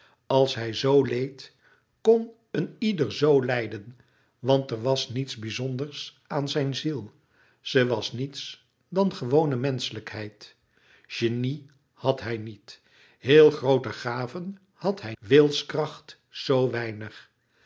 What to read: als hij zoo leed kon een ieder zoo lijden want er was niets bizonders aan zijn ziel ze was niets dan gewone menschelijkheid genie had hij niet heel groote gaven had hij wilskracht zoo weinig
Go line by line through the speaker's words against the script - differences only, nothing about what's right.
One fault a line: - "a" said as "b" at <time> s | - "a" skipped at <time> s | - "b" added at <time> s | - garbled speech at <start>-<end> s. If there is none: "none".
none